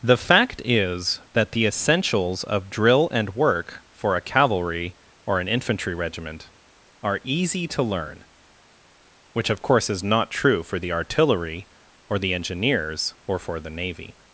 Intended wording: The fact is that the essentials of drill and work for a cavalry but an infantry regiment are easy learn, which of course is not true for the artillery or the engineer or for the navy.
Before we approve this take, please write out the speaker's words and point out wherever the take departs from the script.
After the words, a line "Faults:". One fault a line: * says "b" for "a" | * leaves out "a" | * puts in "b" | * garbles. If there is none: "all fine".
The fact is that the essentials of drill and work for a cavalry or an infantry regiment are easy to learn, which of course is not true for the artillery or the engineers or for the navy.
Faults:
* says "or" for "but"
* puts in "to"
* says "engineers" for "engineer"